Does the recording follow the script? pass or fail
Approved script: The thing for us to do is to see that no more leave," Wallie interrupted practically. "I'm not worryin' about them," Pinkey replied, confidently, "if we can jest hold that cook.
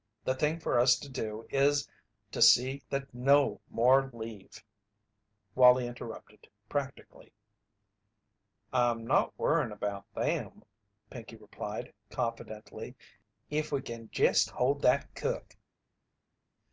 pass